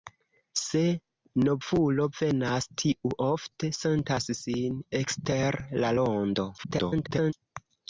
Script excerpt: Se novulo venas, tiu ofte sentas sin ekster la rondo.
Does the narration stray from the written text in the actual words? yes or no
yes